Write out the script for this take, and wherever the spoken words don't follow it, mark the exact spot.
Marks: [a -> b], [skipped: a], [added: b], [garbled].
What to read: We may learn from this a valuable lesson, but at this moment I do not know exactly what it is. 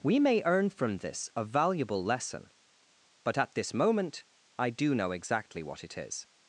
We may [learn -> earn] from this a valuable lesson, but at this moment I do [skipped: not] know exactly what it is.